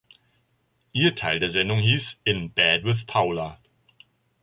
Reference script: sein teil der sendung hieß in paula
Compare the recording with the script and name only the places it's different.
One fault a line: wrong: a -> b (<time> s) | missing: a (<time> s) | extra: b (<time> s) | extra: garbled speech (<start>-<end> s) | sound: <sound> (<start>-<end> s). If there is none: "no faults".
wrong: sein -> ihr (0.9 s)
extra: bed with (2.5 s)